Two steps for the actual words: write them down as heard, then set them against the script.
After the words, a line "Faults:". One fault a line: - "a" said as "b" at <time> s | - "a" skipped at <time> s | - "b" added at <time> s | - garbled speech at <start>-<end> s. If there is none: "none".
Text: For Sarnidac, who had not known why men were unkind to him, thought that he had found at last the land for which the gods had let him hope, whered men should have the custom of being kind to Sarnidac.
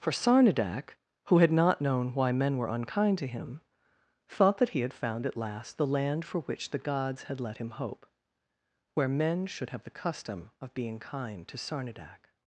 For Sarnidac, who had not known why men were unkind to him, thought that he had found at last the land for which the gods had let him hope, where men should have the custom of being kind to Sarnidac.
Faults:
- "whered" said as "where" at 8.9 s